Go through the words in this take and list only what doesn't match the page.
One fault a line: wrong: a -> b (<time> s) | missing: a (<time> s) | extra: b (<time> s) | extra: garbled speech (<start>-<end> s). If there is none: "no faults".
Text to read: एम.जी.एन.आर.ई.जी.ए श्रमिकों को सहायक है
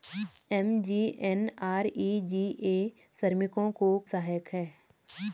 no faults